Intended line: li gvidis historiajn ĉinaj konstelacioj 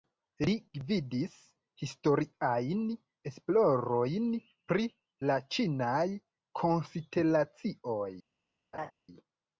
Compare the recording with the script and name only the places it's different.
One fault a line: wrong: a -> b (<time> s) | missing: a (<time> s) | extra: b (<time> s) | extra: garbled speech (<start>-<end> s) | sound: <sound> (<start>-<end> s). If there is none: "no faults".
extra: esplorojn pri la (3.3 s)
sound: laugh (8.7-8.9 s)